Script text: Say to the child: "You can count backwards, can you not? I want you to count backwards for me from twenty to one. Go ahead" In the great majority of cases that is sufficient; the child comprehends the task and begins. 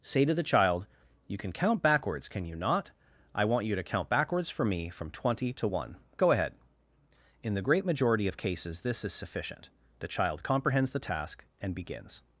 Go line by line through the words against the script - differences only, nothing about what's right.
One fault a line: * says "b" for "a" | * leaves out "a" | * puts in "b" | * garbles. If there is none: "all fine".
* says "this" for "that"